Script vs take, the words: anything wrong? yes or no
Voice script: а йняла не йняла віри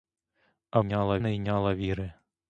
no